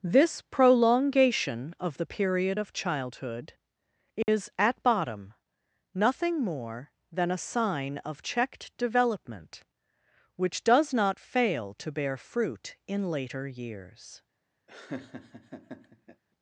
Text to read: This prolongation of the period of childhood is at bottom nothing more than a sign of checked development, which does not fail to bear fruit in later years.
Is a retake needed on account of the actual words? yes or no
no